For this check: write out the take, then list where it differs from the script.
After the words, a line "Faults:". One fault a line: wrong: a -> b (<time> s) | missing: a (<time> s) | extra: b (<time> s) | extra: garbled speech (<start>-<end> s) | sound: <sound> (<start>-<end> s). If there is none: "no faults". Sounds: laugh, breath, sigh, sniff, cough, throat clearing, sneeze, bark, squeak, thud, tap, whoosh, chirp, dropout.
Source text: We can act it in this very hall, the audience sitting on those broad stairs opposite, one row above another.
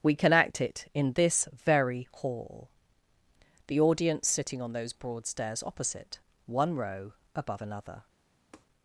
We can act it in this very hall, the audience sitting on those broad stairs opposite, one row above another.
Faults:
sound: tap (8.5-8.7 s)